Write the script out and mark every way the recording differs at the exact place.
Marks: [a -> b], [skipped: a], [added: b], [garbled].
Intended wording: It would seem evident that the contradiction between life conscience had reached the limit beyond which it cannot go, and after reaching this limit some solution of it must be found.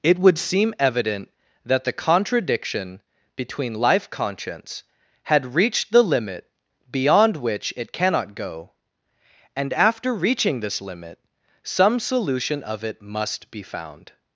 It would seem evident that the contradiction between life conscience had reached the limit beyond which it cannot go, and after reaching this limit some solution of it must be found.